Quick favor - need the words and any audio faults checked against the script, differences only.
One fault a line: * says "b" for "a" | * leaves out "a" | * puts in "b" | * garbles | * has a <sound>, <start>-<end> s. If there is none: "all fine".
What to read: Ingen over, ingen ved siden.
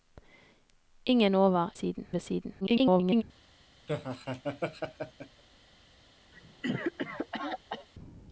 * says "siden" for "ingen"
* garbles
* has a laugh, 3.9-5.4 s
* has a cough, 6.3-7.9 s